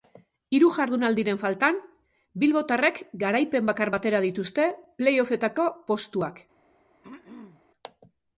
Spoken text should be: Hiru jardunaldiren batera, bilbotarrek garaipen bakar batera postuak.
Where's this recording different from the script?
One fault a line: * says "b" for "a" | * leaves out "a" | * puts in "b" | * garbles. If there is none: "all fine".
* says "faltan" for "batera"
* puts in "dituzte play offetako"